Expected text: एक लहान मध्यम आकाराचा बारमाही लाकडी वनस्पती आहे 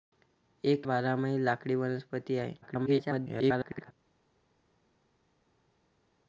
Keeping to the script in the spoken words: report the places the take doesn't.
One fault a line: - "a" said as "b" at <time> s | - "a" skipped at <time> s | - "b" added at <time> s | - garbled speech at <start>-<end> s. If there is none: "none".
- "लहान मध्यम आकाराचा" skipped at 0.9 s
- garbled speech at 2.6-3.9 s